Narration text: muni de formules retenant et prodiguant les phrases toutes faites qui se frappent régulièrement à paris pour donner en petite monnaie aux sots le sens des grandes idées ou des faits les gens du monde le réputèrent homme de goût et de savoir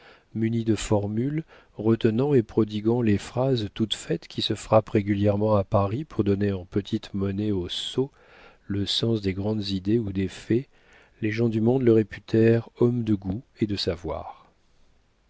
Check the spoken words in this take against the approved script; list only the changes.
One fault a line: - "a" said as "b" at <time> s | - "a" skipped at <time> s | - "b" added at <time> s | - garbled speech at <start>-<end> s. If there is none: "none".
none